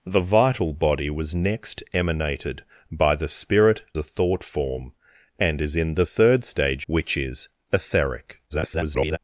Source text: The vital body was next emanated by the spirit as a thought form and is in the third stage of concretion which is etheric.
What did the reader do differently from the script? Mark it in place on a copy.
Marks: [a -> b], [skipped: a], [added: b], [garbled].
The vital body was next emanated by the spirit [skipped: as] a thought form and is in the third stage [skipped: of concretion] which is etheric. [garbled]